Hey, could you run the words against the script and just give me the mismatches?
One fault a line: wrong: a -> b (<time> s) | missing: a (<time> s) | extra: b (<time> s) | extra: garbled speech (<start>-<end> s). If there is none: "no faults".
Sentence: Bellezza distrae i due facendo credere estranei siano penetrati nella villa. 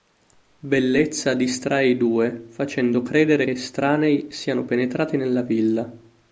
no faults